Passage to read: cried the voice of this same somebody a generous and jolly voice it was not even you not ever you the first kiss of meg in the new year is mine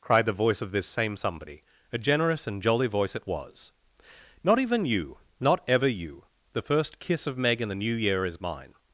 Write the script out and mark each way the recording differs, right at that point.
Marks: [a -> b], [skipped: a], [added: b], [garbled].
cried the voice of this same somebody a generous and jolly voice it was not even you not ever you the first kiss of meg in the new year is mine